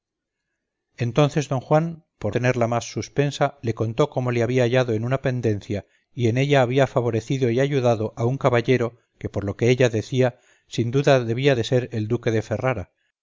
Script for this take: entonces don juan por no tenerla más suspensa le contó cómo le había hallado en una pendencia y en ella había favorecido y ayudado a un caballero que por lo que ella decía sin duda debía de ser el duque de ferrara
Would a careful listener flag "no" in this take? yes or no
yes